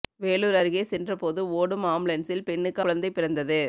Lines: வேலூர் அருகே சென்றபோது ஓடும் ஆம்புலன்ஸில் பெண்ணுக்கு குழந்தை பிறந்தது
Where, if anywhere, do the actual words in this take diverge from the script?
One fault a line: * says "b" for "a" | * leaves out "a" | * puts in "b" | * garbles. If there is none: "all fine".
all fine